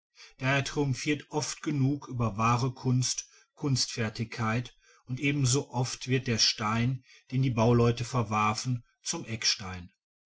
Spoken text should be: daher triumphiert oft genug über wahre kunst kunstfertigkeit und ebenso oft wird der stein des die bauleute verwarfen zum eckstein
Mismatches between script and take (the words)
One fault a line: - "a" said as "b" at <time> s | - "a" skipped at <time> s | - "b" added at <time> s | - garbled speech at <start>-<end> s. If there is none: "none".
- "des" said as "den" at 7.3 s